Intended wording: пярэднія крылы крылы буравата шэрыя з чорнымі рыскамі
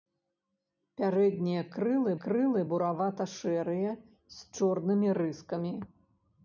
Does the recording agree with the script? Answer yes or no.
yes